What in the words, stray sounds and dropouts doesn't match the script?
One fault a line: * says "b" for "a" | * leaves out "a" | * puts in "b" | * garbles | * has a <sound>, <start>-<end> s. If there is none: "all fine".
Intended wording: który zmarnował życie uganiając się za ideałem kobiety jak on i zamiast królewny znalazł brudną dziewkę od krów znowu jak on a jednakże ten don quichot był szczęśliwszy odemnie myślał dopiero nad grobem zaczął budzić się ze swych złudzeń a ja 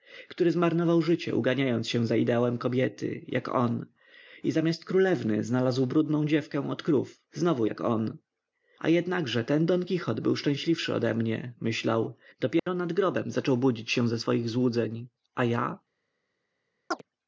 * has a dropout, 12.6-12.7 s
* has a chirp, 16.9-17.0 s